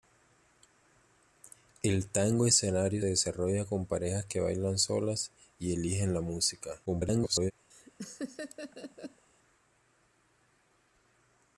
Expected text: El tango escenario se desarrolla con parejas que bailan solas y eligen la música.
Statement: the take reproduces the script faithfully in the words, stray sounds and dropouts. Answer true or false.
false